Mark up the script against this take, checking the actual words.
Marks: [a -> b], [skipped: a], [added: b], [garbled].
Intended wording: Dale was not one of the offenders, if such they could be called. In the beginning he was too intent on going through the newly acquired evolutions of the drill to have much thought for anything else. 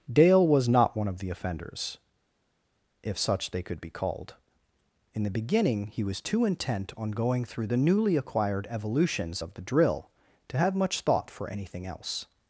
Dale was not one of the offenders, if such they could be called. In the beginning he was too intent on going through the newly acquired evolutions of the drill to have much thought for anything else.